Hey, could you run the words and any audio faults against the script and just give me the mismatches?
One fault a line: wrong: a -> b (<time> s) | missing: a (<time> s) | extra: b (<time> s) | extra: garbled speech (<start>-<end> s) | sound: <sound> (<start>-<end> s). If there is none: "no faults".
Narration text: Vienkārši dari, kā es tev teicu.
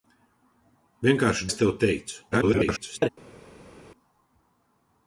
missing: dari kā (1.5 s)
extra: garbled speech (2.3-3.1 s)